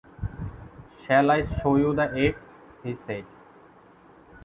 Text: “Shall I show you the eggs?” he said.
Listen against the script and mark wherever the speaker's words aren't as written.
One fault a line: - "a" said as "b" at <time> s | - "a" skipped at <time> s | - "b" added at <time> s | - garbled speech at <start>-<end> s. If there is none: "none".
none